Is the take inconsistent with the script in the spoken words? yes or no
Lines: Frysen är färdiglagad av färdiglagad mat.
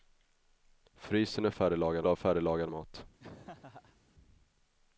no